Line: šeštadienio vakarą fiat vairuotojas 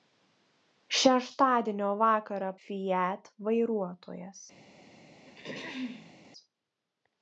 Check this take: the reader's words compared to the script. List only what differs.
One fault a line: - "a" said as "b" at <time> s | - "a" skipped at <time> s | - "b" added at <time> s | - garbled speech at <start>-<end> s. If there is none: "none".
none